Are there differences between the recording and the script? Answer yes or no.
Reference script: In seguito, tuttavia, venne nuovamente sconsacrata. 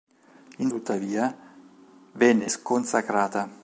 yes